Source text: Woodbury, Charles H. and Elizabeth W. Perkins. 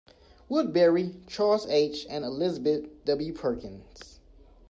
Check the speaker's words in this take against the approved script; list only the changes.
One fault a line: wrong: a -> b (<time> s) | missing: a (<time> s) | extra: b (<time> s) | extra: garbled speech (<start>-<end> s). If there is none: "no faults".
no faults